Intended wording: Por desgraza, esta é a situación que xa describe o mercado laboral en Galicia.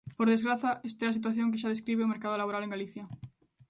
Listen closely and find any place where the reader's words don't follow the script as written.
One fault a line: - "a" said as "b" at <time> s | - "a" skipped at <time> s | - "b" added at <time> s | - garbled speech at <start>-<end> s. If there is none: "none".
none